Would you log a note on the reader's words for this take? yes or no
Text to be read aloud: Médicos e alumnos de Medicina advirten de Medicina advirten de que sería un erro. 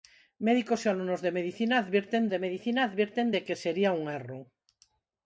no